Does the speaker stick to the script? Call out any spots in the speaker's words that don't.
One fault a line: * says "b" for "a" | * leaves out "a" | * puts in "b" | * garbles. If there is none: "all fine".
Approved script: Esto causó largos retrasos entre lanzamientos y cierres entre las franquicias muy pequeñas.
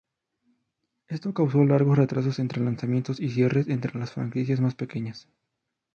* says "más" for "muy"